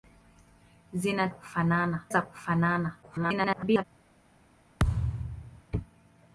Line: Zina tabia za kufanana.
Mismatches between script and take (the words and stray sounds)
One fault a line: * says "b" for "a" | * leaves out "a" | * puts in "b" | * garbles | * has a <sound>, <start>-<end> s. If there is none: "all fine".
* says "kufanana" for "tabia"
* garbles
* has a thud, 4.8-5.6 s